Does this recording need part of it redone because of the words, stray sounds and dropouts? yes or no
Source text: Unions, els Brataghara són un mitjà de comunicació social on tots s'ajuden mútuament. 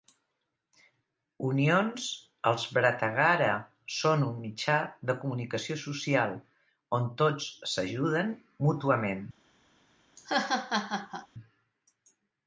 yes